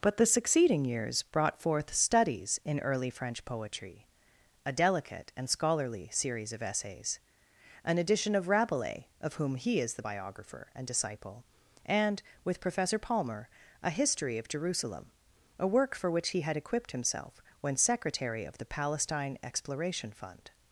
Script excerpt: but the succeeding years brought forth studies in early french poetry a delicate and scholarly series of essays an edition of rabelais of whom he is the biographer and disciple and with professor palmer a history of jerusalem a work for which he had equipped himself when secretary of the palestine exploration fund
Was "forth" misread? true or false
false